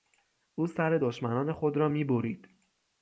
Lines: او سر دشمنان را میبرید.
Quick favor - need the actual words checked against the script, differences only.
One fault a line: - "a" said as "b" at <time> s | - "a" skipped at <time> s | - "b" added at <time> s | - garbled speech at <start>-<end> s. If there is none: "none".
- "خود" added at 1.5 s